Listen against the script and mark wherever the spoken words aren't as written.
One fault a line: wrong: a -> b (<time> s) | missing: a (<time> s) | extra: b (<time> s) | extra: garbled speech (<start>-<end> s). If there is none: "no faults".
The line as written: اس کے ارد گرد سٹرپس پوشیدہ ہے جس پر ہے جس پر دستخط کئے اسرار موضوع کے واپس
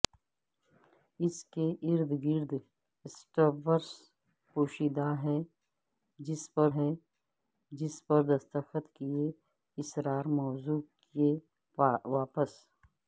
no faults